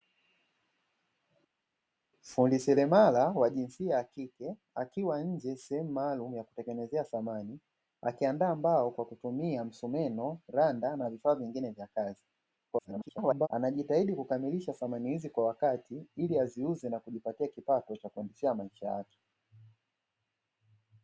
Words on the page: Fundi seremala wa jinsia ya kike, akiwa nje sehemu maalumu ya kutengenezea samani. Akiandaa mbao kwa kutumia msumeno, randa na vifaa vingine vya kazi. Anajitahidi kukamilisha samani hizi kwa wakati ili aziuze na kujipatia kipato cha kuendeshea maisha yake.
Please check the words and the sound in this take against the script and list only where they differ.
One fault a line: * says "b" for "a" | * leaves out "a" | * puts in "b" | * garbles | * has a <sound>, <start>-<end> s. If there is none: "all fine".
* garbles